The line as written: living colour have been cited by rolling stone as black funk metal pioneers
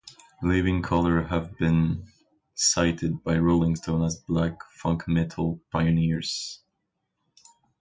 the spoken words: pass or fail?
pass